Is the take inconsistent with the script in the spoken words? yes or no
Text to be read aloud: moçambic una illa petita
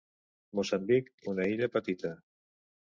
no